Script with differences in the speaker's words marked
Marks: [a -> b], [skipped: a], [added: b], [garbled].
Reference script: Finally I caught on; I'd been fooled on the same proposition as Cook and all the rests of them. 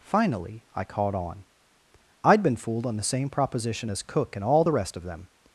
Finally I caught on; I'd been fooled on the same proposition as Cook and all the [rests -> rest] of them.